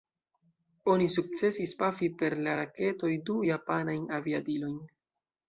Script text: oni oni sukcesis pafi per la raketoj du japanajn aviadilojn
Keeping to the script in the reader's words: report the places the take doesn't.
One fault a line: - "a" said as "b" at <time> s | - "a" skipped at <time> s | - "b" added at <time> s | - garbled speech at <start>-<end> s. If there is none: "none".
- "oni" skipped at 1.1 s